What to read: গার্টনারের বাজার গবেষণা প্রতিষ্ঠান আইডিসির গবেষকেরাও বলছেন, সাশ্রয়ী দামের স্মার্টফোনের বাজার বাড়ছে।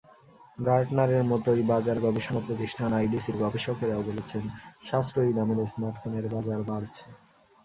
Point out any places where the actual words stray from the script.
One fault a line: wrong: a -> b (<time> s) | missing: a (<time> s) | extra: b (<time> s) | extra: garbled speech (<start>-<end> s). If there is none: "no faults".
extra: মতোই (1.2 s)